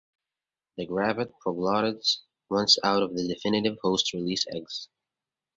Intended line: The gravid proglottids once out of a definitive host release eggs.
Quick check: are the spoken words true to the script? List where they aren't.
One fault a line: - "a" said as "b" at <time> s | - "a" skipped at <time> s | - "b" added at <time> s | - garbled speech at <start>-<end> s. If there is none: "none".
- "a" said as "the" at 3.1 s